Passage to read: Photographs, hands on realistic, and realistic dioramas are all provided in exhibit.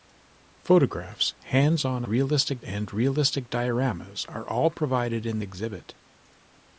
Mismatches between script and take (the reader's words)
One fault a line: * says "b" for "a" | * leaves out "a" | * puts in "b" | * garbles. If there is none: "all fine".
all fine